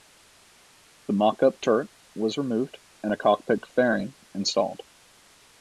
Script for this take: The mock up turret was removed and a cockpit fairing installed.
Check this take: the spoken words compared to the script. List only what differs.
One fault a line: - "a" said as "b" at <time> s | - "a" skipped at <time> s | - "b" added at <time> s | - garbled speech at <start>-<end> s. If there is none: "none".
none